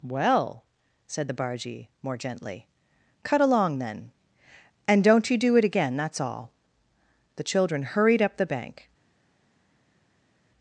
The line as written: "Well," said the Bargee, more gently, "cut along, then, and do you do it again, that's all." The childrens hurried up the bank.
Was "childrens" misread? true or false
true